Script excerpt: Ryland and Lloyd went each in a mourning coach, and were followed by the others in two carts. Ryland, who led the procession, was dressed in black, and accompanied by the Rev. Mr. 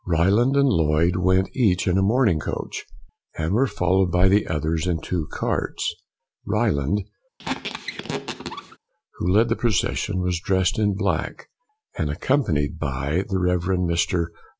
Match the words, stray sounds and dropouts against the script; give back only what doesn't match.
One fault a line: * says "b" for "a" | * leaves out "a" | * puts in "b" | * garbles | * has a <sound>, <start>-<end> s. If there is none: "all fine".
* has a squeak, 7.4-8.8 s